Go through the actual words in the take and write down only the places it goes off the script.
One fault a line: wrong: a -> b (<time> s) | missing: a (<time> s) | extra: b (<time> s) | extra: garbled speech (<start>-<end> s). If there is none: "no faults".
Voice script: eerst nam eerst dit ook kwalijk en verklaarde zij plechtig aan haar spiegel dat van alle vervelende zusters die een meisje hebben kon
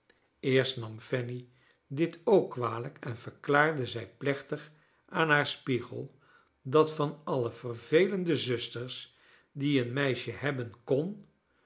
wrong: eerst -> fanny (1.0 s)